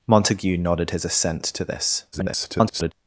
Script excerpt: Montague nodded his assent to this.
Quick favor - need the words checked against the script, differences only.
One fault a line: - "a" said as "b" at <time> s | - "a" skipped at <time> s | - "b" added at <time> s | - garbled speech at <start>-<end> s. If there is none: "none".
- garbled speech at 2.1-2.9 s